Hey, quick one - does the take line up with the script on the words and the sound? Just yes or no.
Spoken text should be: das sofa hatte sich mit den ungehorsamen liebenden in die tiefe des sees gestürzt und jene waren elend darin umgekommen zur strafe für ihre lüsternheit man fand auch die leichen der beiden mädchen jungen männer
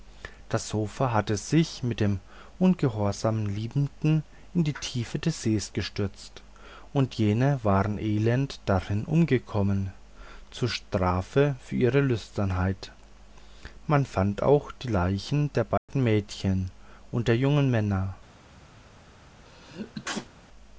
no